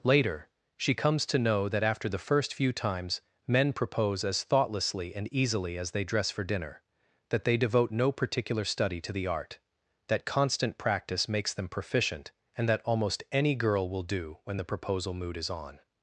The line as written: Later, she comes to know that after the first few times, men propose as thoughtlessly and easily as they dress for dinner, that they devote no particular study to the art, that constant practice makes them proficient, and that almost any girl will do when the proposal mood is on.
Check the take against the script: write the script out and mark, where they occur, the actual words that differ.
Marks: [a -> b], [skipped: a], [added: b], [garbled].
Later, she comes to know that after the first few times, men propose as thoughtlessly and easily as they dress for dinner, that they devote no particular study to the art, that constant practice makes them proficient, and that almost any girl will do when the proposal mood is on.